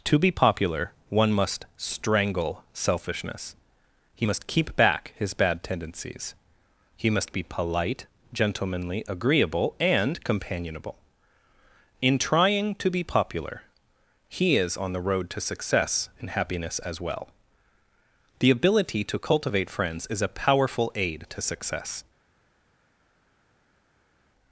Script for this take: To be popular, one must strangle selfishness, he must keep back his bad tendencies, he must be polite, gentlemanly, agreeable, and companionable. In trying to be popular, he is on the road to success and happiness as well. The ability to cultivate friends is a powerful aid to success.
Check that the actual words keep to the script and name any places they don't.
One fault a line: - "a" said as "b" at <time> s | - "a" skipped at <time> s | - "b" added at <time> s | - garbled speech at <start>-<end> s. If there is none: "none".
none